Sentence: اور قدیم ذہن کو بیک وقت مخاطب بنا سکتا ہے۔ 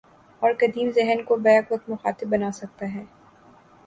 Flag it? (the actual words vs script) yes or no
no